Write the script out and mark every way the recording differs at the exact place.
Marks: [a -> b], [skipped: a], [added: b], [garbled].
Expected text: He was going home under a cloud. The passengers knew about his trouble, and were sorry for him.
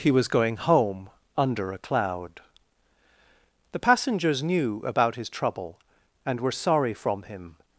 He was going home under a cloud. The passengers knew about his trouble, and were sorry [for -> from] him.